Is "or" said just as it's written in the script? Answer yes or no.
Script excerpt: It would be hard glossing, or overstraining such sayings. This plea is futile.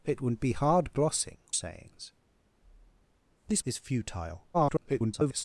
no